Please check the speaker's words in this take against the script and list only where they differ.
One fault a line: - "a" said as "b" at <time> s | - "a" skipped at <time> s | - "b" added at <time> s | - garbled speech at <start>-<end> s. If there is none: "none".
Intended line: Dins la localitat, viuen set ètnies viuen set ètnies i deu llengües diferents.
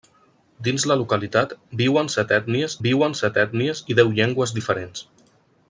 none